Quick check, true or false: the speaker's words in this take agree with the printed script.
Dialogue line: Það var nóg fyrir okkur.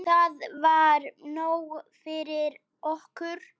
true